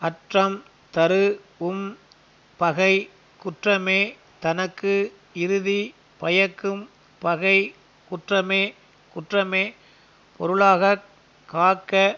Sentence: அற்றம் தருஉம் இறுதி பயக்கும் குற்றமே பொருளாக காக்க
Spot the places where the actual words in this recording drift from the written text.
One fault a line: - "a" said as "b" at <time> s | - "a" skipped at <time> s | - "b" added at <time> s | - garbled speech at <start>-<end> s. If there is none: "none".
- "பகை குற்றமே தனக்கு" added at 2.6 s
- "பகை குற்றமே" added at 7.2 s